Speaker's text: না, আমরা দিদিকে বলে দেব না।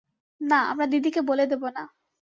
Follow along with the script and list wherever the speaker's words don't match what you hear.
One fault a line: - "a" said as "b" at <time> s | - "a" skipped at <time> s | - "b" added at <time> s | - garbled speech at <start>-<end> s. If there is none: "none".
none